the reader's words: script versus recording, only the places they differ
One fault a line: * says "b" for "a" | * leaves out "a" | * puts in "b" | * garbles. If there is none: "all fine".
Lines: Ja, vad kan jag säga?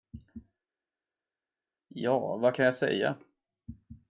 all fine